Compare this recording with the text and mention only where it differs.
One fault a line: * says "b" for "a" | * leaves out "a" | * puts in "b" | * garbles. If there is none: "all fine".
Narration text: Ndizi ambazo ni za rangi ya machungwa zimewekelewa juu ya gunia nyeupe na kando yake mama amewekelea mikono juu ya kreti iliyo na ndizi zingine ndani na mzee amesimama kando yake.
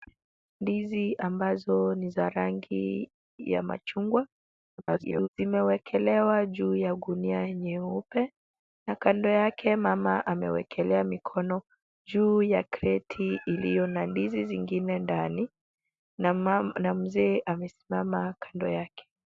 * garbles